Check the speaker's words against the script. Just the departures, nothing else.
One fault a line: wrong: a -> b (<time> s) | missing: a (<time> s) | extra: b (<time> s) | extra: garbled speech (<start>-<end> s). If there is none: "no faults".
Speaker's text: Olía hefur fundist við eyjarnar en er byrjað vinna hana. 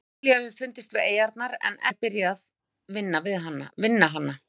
no faults